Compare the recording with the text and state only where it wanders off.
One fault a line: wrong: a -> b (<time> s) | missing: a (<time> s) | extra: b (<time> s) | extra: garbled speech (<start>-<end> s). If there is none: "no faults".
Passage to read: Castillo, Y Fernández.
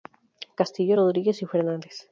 extra: Rodríguez (0.9 s)